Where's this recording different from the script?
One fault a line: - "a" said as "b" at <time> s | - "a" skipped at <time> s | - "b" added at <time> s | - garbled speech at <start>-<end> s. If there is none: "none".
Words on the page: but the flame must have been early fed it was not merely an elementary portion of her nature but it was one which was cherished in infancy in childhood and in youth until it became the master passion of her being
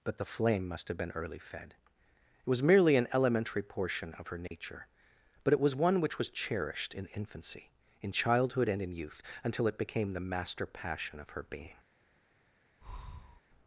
- "not" skipped at 2.6 s